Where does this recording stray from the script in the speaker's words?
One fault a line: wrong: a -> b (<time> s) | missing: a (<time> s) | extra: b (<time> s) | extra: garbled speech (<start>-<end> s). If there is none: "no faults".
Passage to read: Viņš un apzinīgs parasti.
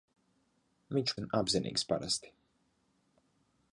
no faults